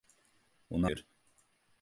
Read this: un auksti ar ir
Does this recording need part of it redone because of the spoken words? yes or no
yes